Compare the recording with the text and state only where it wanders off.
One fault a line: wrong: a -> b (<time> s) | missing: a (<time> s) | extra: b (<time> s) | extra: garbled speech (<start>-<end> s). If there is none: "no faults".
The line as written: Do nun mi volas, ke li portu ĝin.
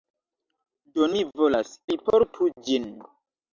missing: nun (1.1 s)
missing: ke (1.7 s)